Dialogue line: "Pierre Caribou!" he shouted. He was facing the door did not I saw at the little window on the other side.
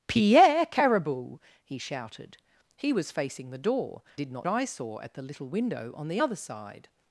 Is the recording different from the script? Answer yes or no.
no